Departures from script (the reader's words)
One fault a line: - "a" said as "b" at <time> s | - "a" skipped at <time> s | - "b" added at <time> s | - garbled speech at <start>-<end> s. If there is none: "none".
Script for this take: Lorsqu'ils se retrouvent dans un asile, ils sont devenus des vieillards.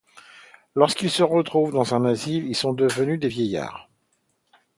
none